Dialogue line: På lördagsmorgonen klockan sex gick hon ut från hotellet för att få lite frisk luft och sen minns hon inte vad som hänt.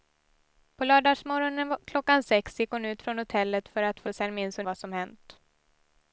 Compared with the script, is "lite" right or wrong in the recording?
wrong